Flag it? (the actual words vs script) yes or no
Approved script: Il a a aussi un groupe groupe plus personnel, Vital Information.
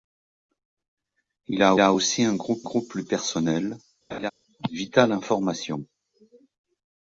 no